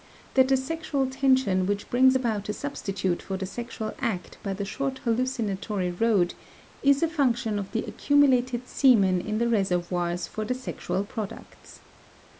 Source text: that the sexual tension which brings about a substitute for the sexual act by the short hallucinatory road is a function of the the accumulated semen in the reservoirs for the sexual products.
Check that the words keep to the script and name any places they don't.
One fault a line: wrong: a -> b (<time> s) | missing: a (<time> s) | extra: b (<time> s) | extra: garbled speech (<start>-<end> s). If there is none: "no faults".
missing: the (7.8 s)